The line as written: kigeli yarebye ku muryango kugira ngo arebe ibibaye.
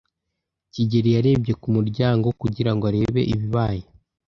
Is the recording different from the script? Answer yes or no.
no